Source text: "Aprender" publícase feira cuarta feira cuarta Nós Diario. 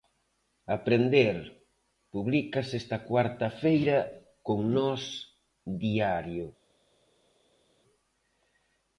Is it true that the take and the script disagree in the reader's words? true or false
true